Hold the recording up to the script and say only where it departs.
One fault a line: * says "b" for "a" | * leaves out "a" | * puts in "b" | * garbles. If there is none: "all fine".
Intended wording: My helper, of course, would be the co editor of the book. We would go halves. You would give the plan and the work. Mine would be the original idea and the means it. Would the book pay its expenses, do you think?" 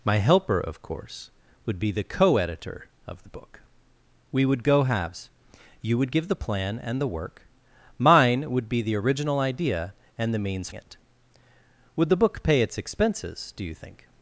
all fine